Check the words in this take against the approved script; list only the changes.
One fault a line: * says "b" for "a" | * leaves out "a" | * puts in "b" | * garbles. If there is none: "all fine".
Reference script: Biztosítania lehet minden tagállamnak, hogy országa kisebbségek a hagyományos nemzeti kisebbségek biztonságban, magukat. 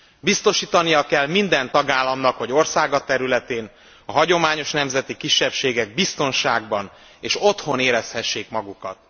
* says "kell" for "lehet"
* says "területén" for "kisebbségek"
* puts in "és otthon érezhessék"